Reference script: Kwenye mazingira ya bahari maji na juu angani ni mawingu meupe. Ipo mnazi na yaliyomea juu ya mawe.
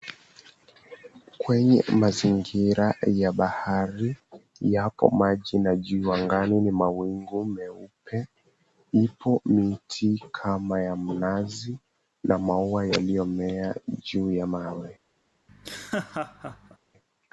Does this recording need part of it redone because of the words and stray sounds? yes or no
yes